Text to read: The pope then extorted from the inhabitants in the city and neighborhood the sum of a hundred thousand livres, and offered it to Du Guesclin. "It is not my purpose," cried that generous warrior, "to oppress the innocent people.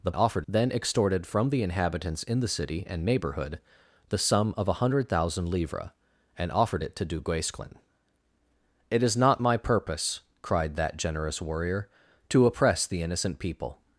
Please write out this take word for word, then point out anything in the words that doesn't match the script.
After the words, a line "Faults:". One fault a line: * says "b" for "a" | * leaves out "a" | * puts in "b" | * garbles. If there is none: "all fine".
The offered then extorted from the inhabitants in the city and neighborhood the sum of a hundred thousand livres, and offered it to Du Guesclin. "It is not my purpose," cried that generous warrior, "to oppress the innocent people.
Faults:
* says "offered" for "pope"